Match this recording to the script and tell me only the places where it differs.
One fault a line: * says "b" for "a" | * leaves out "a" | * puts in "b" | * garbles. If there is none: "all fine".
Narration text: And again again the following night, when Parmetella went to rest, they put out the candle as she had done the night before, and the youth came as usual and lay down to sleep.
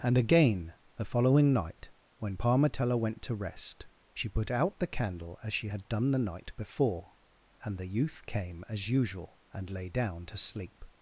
* leaves out "again"
* says "she" for "they"